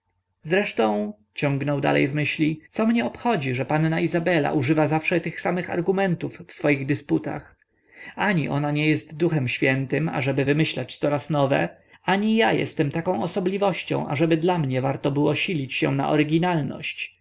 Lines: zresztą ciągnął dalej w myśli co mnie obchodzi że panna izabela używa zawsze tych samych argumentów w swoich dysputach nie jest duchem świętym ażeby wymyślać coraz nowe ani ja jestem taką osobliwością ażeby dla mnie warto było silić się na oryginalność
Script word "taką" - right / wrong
right